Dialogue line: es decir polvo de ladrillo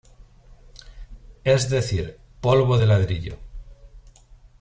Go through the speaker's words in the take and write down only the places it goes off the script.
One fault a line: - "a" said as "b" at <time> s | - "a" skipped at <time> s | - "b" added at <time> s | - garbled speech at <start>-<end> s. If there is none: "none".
none